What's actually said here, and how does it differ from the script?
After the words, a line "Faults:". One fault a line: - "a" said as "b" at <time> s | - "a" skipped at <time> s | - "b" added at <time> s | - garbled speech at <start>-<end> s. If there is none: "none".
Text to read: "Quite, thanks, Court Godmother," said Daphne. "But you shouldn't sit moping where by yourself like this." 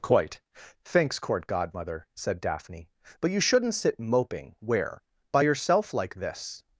"Quite, thanks, Court Godmother," said Daphne. "But you shouldn't sit moping where by yourself like this."
Faults:
none